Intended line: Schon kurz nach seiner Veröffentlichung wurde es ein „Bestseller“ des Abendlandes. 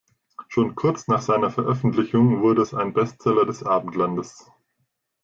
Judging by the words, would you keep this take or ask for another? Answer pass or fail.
pass